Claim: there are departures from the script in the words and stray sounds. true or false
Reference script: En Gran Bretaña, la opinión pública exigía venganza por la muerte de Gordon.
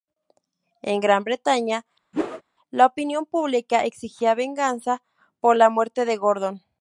true